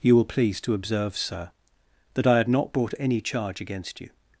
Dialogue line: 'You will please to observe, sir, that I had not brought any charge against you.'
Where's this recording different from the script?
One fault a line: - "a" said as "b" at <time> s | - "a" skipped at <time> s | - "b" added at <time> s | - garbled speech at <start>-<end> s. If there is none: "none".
none